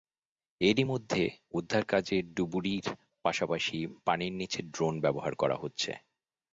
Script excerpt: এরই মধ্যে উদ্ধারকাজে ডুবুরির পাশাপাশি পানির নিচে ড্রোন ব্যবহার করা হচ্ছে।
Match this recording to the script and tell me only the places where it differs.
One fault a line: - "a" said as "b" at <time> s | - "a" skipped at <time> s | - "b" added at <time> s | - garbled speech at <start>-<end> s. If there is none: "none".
none